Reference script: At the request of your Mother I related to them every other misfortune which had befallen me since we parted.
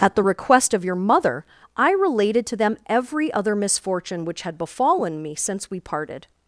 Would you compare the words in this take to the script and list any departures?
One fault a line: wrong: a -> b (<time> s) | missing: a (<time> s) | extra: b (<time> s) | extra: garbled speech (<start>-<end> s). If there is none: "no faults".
no faults